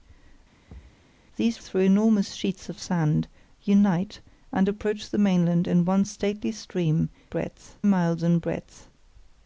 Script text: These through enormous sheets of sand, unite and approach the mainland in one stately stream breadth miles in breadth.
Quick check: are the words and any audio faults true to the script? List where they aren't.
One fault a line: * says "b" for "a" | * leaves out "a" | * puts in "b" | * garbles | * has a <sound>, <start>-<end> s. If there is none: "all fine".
* has a thud, 0.7-1.1 s